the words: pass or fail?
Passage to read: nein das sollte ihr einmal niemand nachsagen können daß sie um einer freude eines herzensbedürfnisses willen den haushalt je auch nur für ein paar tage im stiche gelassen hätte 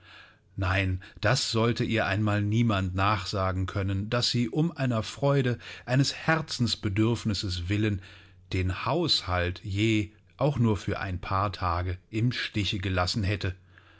pass